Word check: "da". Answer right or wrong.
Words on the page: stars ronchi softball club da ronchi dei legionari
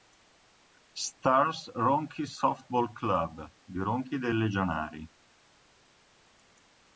wrong